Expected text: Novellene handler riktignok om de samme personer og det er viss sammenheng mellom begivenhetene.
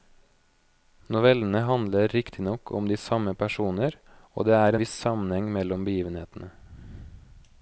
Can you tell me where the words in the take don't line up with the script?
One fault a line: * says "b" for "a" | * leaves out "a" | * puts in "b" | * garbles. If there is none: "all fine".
all fine